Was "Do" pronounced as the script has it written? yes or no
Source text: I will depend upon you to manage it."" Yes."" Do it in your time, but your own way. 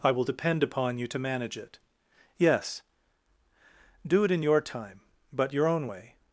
yes